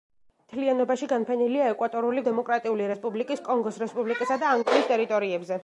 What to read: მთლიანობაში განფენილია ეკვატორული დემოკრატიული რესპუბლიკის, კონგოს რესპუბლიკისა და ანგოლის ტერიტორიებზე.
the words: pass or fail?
pass